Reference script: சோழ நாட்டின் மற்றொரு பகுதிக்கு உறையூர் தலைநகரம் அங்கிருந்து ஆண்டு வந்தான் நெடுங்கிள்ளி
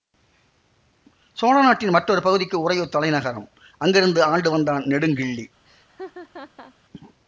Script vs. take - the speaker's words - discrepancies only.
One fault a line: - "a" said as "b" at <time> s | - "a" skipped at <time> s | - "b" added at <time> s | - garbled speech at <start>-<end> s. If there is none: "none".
none